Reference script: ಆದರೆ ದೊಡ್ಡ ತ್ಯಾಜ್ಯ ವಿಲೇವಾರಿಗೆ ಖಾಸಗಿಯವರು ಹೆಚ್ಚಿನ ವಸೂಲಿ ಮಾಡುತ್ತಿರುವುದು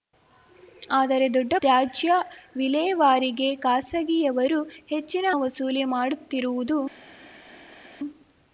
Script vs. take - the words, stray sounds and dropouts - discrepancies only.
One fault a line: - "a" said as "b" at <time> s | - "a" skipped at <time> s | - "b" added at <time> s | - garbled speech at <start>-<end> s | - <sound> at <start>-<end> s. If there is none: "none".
none